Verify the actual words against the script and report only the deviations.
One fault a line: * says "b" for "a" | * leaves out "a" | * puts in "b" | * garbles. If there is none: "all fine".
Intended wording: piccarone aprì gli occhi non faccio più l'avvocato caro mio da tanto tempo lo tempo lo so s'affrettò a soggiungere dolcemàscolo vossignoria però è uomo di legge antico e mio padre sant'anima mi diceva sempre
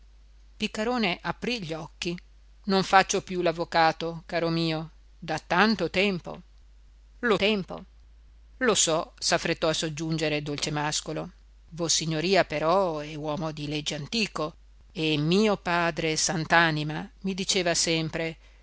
all fine